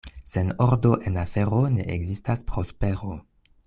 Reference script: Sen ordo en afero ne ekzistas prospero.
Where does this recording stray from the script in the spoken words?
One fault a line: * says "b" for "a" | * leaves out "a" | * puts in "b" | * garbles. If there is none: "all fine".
all fine